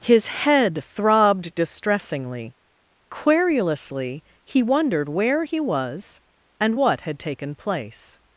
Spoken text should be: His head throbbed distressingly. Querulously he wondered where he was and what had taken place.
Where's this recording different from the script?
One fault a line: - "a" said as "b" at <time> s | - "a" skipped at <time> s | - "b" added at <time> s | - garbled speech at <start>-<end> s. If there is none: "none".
none